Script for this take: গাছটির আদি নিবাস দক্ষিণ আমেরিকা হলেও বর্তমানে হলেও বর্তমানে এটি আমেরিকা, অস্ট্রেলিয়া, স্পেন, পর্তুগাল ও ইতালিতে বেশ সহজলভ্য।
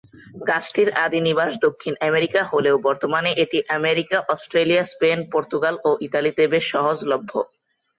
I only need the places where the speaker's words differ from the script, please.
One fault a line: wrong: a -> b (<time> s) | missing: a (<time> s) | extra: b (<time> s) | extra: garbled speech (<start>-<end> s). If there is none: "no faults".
missing: হলেও বর্তমানে (3.3 s)